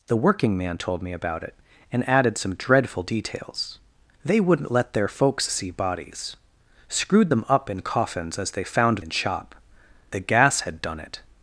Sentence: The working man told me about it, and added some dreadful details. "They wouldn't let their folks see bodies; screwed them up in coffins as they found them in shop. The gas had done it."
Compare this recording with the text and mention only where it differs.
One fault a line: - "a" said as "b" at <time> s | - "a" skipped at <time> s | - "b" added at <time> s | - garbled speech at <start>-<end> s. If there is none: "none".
- "them" skipped at 9.0 s